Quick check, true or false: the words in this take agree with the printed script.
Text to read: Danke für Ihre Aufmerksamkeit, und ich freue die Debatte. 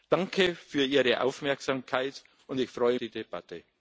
true